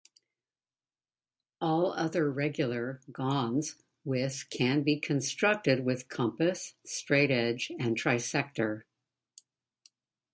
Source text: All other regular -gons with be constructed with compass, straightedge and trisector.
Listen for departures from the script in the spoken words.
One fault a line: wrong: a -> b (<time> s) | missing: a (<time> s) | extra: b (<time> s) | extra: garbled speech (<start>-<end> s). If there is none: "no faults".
extra: can (4.5 s)